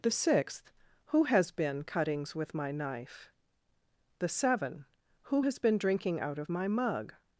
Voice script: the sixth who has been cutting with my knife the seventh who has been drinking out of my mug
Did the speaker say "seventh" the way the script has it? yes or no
no